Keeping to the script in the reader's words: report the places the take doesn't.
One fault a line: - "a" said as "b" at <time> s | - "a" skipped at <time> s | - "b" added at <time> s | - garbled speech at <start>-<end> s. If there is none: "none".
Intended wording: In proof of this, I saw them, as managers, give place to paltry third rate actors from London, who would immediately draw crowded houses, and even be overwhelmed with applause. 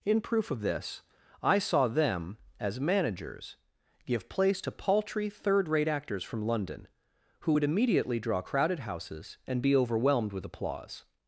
- "even" skipped at 9.6 s